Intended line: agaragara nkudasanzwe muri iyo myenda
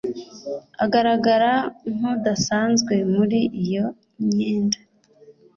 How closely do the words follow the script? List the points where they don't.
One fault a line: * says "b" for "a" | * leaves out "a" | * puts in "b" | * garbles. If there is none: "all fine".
all fine